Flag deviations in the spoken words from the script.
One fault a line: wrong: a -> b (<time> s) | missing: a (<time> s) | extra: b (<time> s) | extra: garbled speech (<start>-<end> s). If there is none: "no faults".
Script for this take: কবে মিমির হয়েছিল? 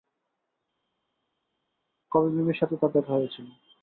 extra: সাথে তার দেখা (2.6 s)